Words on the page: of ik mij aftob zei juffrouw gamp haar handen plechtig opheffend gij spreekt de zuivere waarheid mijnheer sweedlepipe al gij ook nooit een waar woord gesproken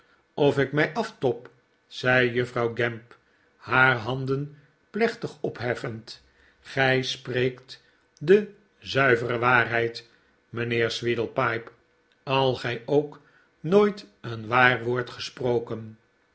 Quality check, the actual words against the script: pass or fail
pass